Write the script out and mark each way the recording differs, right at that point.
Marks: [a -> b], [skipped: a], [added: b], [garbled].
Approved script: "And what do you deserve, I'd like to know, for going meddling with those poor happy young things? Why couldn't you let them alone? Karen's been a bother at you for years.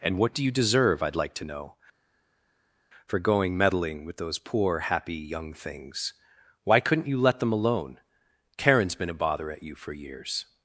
"And what do you deserve, I'd like to know, for going meddling with those poor happy young things? Why couldn't you let them alone? Karen's been a bother at you for years.